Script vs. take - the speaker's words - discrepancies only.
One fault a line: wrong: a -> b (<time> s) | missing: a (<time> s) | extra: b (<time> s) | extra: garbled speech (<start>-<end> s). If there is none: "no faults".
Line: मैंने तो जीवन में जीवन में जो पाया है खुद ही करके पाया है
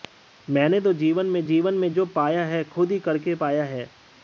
no faults